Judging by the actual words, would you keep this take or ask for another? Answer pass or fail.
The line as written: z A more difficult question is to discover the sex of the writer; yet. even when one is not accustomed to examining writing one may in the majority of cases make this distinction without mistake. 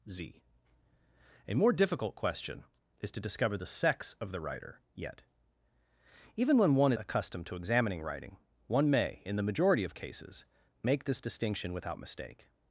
fail